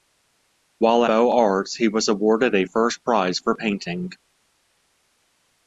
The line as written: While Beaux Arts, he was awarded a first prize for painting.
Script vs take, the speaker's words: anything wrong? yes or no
no